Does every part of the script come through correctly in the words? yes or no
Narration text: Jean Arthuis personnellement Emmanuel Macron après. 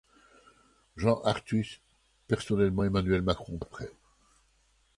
yes